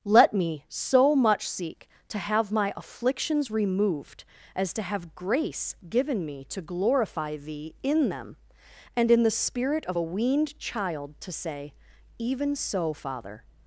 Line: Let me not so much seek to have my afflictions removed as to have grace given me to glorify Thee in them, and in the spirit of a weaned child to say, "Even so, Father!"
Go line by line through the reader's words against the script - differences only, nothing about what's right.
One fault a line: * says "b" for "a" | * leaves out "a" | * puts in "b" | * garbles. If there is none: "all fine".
* leaves out "not"